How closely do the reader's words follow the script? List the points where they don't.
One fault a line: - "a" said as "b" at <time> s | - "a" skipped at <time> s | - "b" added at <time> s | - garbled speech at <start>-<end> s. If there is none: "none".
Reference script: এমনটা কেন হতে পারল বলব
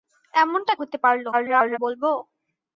- "কেন" skipped at 0.7 s
- garbled speech at 1.3-1.8 s